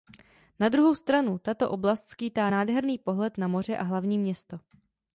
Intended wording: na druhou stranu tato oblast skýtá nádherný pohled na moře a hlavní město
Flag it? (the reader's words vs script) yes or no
no